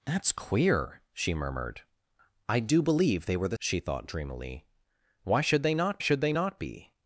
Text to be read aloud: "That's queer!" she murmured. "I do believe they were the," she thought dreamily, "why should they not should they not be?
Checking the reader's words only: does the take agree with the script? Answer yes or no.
yes